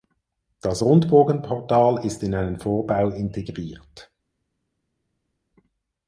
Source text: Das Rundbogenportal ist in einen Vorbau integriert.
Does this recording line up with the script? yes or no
yes